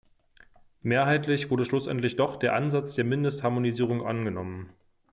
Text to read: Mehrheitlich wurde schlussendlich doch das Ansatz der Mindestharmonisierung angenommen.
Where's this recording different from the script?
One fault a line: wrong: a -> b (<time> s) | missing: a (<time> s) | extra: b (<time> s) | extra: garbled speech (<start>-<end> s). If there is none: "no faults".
wrong: das -> der (2.4 s)